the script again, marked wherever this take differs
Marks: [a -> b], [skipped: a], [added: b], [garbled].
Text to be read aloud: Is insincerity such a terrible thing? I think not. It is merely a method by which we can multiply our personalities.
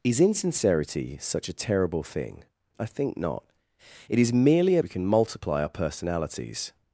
Is insincerity such a terrible thing? I think not. It is merely a [skipped: method by which] we can multiply our personalities.